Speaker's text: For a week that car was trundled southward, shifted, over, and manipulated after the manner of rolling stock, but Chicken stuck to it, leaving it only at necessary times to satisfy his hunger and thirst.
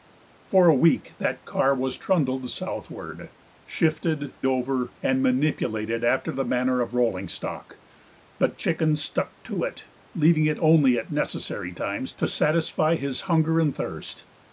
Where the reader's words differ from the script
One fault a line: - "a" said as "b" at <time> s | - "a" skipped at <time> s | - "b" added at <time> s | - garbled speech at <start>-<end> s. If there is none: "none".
none